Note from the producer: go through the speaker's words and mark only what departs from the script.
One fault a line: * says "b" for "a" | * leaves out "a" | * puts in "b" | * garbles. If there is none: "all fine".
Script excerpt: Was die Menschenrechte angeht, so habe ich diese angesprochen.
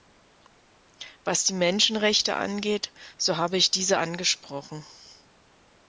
all fine